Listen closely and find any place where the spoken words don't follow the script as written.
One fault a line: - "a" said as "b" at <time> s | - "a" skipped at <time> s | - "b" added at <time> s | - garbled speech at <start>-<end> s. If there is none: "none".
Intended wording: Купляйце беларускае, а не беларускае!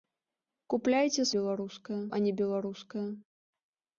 none